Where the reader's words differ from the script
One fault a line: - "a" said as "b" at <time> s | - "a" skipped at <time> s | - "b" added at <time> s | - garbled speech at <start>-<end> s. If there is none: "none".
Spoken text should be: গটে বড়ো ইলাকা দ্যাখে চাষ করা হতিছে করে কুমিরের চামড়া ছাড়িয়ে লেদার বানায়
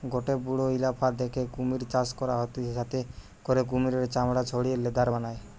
- "কুমির" added at 1.5 s
- "যাতে" added at 2.7 s